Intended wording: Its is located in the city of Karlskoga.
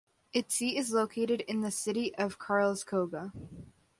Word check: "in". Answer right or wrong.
right